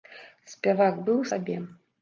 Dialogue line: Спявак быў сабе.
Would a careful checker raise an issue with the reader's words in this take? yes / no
no